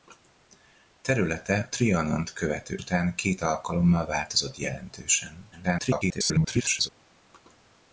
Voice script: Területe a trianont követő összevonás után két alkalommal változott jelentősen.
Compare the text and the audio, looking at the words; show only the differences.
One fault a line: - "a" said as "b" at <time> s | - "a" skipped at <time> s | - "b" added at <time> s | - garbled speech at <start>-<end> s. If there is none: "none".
- "a" skipped at 1.7 s
- "összevonás" skipped at 2.8 s
- garbled speech at 5.5-6.9 s